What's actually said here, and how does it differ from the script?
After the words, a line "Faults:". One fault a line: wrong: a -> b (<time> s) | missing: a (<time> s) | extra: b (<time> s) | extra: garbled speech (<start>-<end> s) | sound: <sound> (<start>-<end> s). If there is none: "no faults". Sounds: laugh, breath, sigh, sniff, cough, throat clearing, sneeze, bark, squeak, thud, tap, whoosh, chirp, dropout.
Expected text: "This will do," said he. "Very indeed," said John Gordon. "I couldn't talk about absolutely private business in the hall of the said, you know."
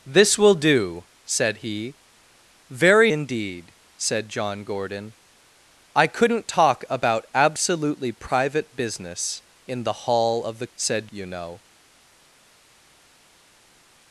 "This will do," said he. "Very indeed," said John Gordon. "I couldn't talk about absolutely private business in the hall of the said, you know."
Faults:
no faults